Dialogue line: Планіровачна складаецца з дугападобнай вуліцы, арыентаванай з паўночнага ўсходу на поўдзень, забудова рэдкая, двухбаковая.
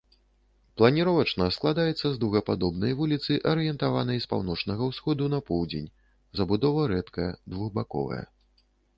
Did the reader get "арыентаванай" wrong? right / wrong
right